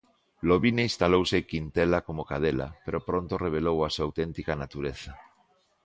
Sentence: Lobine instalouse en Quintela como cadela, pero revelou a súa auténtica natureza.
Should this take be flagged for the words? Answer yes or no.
yes